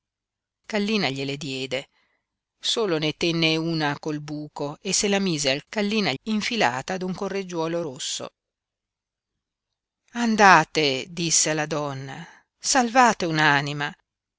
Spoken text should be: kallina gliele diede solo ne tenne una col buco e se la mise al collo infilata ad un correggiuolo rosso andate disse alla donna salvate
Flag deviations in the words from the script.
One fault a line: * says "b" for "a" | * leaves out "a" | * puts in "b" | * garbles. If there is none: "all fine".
* says "kallina" for "collo"